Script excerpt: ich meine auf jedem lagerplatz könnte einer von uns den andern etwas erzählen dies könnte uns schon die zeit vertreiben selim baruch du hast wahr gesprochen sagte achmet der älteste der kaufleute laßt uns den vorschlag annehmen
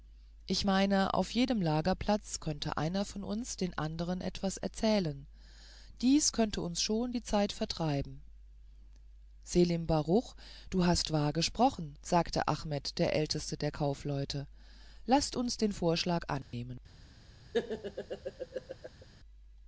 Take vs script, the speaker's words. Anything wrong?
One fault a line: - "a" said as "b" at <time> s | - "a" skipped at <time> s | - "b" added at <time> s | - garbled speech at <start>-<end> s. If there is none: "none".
none